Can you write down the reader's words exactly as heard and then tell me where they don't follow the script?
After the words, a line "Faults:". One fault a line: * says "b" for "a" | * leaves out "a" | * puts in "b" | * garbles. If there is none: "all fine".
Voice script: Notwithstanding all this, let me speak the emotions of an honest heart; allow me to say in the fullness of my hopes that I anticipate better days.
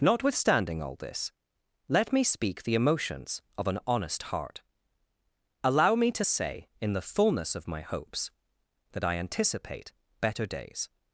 Notwithstanding all this, let me speak the emotions of an honest heart; allow me to say in the fullness of my hopes that I anticipate better days.
Faults:
all fine